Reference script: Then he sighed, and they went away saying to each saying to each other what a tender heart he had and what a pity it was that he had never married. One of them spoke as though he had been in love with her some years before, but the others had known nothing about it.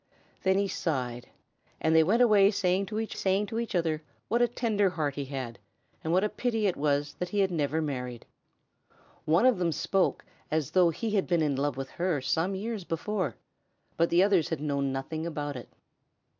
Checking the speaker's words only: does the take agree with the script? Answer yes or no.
yes